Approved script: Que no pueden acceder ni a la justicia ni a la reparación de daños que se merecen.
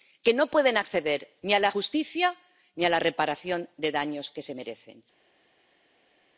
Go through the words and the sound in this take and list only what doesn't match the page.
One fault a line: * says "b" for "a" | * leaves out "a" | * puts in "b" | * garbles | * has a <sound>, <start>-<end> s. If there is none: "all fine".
all fine